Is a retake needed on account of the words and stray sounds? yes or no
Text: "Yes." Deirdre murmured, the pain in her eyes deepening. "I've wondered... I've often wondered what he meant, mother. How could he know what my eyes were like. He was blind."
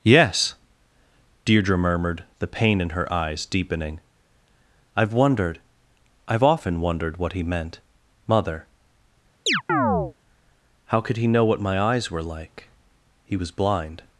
yes